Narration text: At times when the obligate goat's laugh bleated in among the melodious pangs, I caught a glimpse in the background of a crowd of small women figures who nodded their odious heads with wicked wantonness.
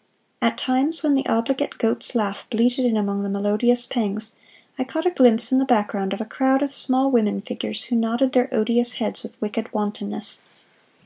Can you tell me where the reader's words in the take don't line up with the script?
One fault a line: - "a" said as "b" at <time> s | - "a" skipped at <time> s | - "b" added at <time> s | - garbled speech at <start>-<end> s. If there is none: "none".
none